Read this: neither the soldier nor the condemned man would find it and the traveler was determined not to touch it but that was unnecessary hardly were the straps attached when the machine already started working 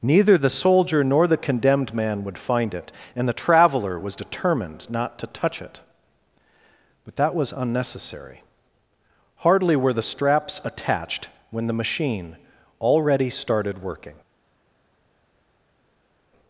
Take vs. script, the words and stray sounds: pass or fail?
pass